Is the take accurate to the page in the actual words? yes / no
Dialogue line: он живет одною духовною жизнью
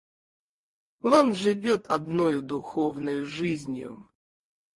yes